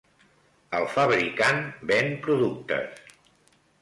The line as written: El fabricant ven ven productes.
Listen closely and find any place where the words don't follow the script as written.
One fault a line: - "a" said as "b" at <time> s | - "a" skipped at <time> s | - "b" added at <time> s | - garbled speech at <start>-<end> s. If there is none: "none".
- "ven" skipped at 2.1 s